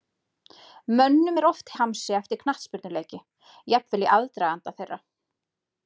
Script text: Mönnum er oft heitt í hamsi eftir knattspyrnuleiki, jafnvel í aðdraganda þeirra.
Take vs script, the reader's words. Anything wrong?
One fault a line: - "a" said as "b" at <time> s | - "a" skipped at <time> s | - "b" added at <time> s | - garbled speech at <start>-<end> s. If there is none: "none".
- "heitt" skipped at 1.7 s